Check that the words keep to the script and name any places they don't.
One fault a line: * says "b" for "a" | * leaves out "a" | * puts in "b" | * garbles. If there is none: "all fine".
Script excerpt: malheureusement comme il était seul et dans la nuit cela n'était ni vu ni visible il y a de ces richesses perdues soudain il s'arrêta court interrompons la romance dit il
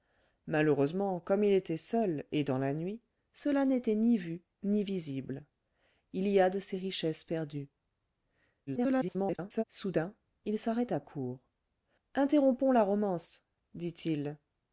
* garbles